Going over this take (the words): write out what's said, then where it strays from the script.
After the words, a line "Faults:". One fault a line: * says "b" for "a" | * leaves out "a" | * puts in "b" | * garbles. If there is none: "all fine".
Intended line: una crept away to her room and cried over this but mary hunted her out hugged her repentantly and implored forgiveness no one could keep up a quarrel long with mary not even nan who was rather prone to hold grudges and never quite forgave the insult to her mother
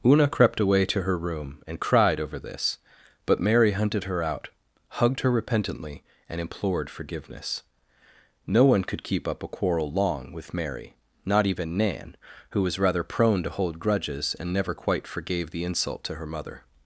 una crept away to her room and cried over this but mary hunted her out hugged her repentantly and implored forgiveness no one could keep up a quarrel long with mary not even nan who was rather prone to hold grudges and never quite forgave the insult to her mother
Faults:
all fine